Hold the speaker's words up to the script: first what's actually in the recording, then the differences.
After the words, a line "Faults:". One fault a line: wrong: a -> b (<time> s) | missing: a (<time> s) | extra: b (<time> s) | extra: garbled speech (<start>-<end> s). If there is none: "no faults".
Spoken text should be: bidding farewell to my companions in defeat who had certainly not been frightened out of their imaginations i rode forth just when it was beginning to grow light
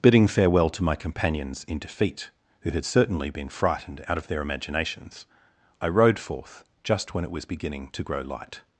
bidding farewell to my companions in defeat who had certainly been frightened out of their imaginations i rode forth just when it was beginning to grow light
Faults:
missing: not (3.3 s)